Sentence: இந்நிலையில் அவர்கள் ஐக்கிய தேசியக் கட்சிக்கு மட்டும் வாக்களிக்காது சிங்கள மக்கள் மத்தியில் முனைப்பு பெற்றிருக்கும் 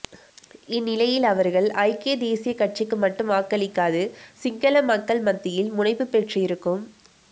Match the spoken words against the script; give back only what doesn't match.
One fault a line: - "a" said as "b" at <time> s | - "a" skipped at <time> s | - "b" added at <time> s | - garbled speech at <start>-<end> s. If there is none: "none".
none